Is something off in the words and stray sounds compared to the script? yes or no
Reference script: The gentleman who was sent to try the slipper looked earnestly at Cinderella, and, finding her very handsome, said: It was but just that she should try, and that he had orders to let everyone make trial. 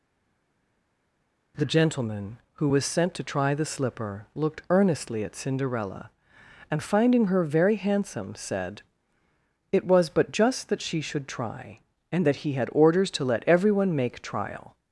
no